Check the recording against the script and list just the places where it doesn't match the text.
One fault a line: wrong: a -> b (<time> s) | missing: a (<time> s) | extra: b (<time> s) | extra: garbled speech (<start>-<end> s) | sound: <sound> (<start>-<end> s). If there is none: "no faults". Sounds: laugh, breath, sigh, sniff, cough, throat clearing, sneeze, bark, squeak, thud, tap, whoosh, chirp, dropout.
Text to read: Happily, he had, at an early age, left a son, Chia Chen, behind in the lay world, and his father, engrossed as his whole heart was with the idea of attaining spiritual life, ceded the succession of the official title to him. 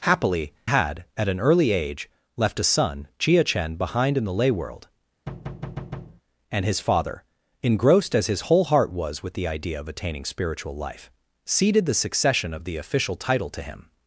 missing: he (0.5 s)
sound: thud (5.3-6.2 s)